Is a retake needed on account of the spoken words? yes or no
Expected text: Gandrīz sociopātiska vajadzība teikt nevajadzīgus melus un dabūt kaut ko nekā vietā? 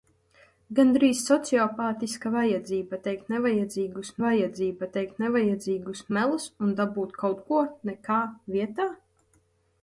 yes